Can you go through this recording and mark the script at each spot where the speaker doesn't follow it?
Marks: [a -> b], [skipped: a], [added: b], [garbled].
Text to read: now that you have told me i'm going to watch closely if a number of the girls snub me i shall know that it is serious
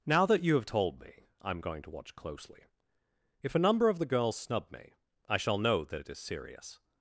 now that you have told me i'm going to watch closely if a number of the girls snub me i shall know that it is serious